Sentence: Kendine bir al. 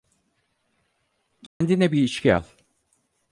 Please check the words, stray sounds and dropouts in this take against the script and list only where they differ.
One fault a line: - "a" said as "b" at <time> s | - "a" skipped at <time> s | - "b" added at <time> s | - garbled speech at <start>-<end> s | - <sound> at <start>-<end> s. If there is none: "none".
- dropout at 1.5-1.6 s
- "içki" added at 2.0 s